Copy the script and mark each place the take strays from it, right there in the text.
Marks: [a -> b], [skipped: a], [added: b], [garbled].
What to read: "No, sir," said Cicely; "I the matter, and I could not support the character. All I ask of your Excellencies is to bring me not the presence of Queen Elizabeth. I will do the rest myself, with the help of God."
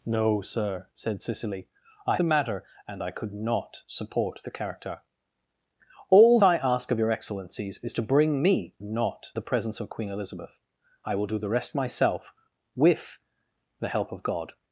"No, sir," said Cicely; "I the matter, and I could not support the character. All I ask of your Excellencies is to bring me not the presence of Queen Elizabeth. I will do the rest myself, with the help of God."